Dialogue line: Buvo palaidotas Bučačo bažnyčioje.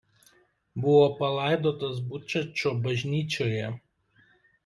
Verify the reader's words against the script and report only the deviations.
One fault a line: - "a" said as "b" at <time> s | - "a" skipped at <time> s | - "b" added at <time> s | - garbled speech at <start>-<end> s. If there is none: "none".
none